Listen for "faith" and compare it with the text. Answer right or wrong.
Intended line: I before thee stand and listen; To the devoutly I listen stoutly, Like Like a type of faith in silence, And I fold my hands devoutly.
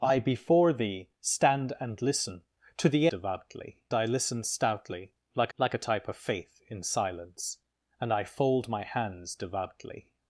right